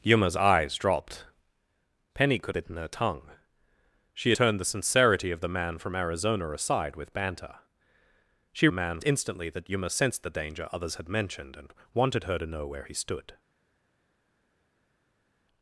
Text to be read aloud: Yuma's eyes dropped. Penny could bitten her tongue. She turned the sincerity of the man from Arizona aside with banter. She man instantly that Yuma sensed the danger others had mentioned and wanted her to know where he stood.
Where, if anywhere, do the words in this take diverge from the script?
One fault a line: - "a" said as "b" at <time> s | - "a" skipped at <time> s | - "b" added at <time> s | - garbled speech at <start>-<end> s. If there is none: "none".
none